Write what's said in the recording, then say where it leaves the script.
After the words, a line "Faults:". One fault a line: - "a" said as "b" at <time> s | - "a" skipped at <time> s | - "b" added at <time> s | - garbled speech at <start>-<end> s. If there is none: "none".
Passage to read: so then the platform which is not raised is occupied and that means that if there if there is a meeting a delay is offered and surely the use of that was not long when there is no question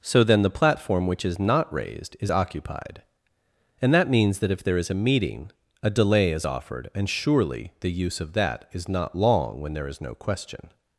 so then the platform which is not raised is occupied and that means that if there is a meeting a delay is offered and surely the use of that is not long when there is no question
Faults:
- "if there" skipped at 4.8 s
- "was" said as "is" at 8.7 s